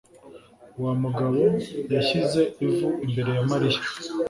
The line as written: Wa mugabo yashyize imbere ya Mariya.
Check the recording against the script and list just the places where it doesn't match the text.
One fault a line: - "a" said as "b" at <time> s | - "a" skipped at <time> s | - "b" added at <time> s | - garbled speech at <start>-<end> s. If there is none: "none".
- "ivu" added at 2.6 s